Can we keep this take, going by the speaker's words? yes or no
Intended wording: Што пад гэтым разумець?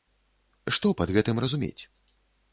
yes